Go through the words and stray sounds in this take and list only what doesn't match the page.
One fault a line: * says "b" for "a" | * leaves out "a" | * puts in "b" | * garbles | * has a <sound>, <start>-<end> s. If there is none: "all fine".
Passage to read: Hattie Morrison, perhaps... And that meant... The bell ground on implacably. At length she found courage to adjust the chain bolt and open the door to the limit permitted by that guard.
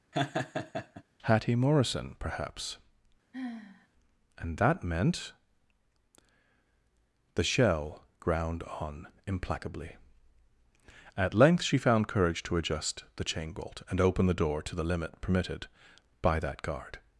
* has a laugh, 0.1-1.0 s
* has a sigh, 3.3-3.9 s
* says "shell" for "bell"